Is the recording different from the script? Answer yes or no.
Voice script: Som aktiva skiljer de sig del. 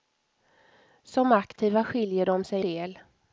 no